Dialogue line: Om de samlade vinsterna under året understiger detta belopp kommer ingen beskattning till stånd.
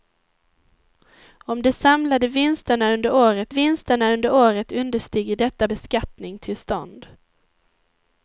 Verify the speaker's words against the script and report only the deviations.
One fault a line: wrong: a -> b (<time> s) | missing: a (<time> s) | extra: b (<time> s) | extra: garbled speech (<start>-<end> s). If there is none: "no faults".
wrong: understiger detta belopp kommer ingen -> vinsterna under året understiger detta (3.5 s)